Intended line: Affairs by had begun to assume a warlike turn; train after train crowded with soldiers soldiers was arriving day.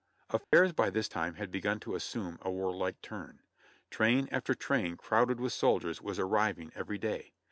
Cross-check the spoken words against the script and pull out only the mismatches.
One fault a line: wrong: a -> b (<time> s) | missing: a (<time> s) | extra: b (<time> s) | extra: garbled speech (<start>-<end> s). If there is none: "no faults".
extra: this time (0.9 s)
missing: soldiers (6.0 s)
extra: every (6.8 s)